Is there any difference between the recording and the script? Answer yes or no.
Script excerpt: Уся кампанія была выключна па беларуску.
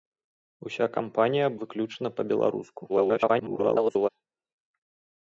yes